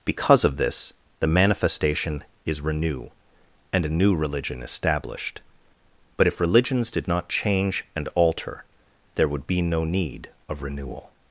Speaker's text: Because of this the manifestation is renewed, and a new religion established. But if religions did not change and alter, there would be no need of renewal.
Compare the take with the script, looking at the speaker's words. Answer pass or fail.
fail